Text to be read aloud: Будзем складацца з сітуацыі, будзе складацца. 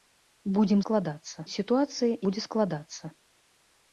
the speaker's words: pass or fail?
pass